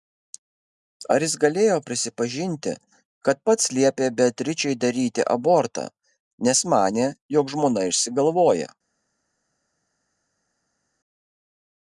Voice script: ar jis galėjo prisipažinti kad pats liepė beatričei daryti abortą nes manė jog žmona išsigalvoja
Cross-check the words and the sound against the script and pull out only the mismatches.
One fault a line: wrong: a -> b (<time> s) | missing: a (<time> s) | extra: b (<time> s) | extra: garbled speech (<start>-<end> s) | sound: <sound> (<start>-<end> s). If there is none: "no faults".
no faults